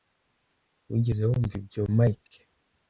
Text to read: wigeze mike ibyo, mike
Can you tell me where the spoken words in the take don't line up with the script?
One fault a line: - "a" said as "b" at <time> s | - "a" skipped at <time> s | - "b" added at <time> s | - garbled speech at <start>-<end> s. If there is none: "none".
- "mike" said as "wumva" at 1.3 s